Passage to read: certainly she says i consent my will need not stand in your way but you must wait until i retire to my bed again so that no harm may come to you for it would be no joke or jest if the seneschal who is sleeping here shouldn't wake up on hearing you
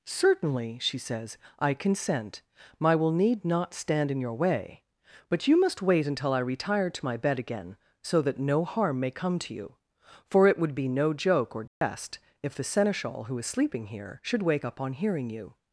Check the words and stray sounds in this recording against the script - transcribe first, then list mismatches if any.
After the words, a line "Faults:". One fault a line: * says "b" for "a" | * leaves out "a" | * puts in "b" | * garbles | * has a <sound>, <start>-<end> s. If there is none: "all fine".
certainly she says i consent my will need not stand in your way but you must wait until i retire to my bed again so that no harm may come to you for it would be no joke or jest if the seneschal who is sleeping here should wake up on hearing you
Faults:
* has a dropout, 11.7-11.8 s
* says "should" for "shouldn't"